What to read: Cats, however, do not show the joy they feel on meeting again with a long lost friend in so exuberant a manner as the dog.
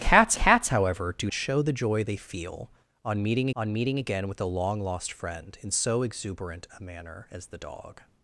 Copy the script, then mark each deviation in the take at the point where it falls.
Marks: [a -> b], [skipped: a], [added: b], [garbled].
Cats, [added: cats] however, do [skipped: not] show the joy they feel on meeting [added: on meeting] again with a long lost friend in so exuberant a manner as the dog.